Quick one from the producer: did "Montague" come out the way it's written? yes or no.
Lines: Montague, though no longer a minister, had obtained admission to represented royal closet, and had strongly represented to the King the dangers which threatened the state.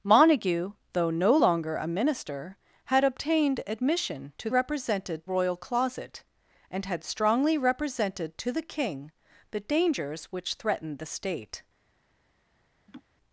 yes